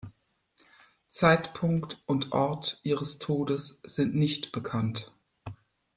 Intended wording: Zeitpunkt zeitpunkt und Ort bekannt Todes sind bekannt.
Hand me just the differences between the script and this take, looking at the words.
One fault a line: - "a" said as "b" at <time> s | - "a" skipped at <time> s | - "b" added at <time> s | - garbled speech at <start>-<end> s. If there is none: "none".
- "zeitpunkt" skipped at 2.0 s
- "bekannt" said as "ihres" at 2.8 s
- "nicht" added at 4.1 s